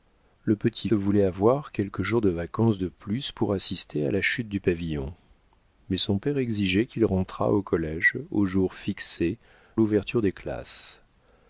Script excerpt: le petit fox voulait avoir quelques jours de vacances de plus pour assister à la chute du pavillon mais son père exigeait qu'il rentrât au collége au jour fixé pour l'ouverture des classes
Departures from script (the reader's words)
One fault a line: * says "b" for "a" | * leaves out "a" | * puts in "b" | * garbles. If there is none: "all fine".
* leaves out "fox"
* leaves out "pour"